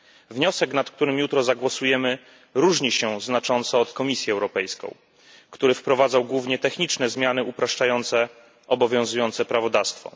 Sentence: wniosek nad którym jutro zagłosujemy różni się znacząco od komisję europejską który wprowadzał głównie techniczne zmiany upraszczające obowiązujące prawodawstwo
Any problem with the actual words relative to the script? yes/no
no